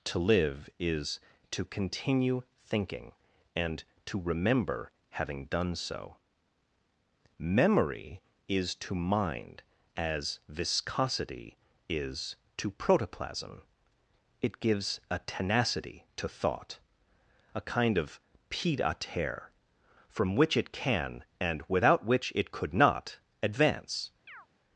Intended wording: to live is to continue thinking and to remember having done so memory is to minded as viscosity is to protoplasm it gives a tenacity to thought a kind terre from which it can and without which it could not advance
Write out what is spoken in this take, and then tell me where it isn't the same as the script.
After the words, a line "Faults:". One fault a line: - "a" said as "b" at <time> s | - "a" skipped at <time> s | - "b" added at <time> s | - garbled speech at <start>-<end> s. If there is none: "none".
to live is to continue thinking and to remember having done so memory is to mind as viscosity is to protoplasm it gives a tenacity to thought a kind of pied à terre from which it can and without which it could not advance
Faults:
- "minded" said as "mind" at 8.9 s
- "of pied à" added at 18.0 s